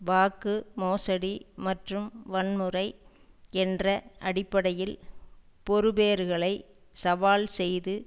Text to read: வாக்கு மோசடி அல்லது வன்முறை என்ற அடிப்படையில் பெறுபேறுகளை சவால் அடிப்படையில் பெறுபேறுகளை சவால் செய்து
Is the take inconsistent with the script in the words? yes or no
yes